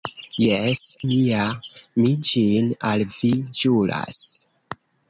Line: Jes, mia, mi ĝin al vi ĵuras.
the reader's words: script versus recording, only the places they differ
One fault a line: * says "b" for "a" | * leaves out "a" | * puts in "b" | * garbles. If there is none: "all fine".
all fine